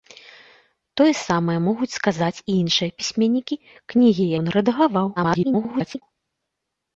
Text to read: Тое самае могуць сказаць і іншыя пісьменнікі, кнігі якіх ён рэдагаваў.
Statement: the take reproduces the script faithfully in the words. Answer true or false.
false